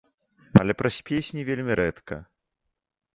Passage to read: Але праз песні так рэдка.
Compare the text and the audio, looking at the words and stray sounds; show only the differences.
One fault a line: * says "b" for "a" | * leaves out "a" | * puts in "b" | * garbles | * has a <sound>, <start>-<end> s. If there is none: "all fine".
* says "вельмі" for "так"